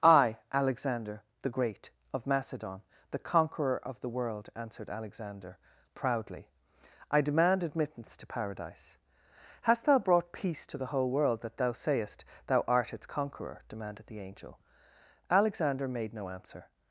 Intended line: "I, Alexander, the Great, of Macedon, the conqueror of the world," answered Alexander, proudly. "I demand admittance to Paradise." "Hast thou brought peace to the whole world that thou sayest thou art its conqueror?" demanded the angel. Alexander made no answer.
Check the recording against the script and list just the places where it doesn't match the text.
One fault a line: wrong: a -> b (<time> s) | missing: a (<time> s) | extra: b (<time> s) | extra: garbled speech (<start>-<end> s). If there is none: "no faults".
no faults